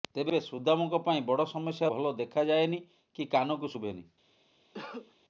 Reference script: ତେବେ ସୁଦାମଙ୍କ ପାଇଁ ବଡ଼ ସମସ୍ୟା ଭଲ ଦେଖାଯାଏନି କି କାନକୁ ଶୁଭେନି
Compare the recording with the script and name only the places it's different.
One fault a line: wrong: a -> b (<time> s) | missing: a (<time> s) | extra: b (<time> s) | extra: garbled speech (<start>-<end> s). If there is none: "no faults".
no faults